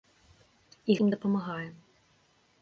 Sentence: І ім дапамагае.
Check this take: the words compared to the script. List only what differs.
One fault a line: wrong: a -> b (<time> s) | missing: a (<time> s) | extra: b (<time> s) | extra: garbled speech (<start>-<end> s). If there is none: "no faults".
no faults